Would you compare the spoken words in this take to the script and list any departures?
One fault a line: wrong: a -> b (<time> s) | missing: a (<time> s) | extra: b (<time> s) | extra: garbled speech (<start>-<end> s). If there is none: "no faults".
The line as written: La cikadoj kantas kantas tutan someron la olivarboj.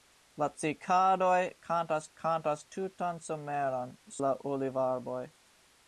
no faults